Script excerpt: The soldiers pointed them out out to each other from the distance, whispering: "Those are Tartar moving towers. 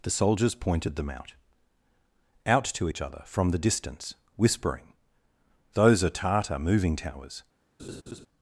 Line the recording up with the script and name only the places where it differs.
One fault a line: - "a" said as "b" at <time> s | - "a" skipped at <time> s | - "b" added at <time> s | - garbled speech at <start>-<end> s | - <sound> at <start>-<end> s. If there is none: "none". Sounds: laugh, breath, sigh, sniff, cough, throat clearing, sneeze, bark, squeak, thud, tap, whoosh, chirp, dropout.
- laugh at 7.8-8.3 s